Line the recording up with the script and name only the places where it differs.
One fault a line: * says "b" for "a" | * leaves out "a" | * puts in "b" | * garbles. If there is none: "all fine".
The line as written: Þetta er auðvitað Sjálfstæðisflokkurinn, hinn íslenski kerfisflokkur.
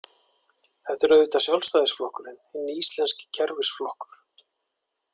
all fine